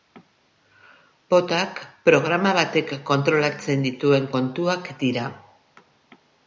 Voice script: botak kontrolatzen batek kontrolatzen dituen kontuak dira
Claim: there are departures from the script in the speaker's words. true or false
true